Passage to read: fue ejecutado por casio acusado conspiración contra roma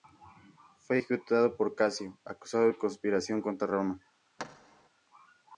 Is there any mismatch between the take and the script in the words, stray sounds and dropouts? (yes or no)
yes